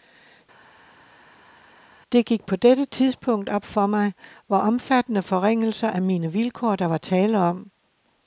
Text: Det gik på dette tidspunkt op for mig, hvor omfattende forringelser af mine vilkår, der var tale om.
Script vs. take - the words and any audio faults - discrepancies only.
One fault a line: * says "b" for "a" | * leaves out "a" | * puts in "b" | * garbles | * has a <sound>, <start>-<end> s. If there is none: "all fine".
all fine